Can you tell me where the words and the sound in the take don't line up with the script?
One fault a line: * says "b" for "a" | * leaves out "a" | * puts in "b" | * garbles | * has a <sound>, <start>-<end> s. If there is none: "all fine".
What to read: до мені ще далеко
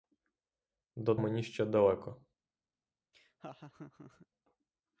* has a laugh, 3.1-4.3 s